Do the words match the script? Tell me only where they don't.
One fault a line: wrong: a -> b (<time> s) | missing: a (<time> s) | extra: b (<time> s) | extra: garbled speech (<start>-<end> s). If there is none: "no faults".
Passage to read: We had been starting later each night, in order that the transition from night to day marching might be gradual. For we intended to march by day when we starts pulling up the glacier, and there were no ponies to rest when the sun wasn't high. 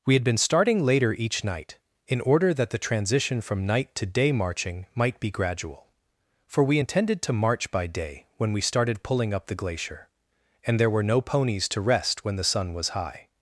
wrong: starts -> started (8.6 s)
wrong: wasn't -> was (12.7 s)